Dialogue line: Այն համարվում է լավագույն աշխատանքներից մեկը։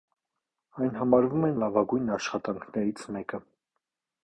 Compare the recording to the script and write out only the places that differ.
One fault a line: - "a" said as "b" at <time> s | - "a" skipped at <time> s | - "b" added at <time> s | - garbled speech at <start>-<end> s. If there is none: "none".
none